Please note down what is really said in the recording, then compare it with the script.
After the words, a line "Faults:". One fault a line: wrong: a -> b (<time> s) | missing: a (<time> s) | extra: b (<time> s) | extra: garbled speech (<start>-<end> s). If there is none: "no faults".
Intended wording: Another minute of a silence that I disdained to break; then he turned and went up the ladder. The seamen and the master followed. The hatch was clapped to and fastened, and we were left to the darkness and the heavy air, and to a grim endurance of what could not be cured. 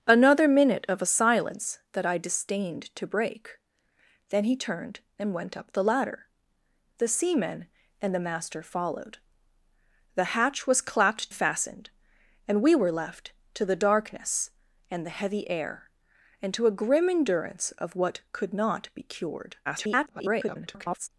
Another minute of a silence that I disdained to break; then he turned and went up the ladder. The seamen and the master followed. The hatch was clapped fastened, and we were left to the darkness and the heavy air, and to a grim endurance of what could not be cured. [garbled]
Faults:
missing: to and (11.3 s)
extra: garbled speech (19.7-21.1 s)